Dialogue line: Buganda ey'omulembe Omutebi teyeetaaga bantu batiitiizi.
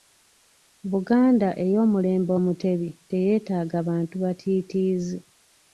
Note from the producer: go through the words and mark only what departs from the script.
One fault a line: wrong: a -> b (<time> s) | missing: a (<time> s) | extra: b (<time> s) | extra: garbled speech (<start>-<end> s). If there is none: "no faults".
no faults